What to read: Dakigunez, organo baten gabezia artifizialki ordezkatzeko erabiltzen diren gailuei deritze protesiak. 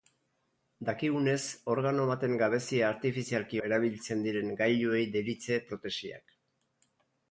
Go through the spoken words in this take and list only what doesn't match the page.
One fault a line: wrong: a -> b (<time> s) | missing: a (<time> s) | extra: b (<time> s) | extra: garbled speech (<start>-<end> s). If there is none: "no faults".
missing: ordezkatzeko (3.6 s)